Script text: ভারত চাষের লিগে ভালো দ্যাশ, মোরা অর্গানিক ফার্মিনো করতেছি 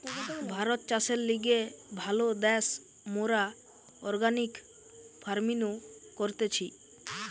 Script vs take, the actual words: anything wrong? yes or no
no